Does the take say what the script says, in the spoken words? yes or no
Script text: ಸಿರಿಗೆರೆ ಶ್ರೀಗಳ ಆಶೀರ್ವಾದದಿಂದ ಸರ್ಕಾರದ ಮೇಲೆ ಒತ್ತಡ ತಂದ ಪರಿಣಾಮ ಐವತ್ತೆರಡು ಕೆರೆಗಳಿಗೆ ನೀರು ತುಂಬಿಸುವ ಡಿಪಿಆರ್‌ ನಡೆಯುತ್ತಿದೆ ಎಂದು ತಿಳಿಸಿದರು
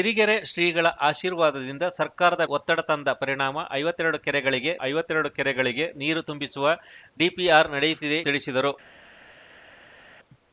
no